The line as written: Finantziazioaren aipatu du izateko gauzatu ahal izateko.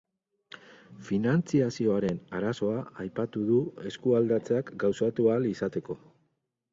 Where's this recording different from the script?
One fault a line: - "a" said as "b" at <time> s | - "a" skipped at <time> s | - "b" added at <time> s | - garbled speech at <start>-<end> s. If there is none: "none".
- "arazoa" added at 2.4 s
- "izateko" said as "eskualdatzeak" at 3.9 s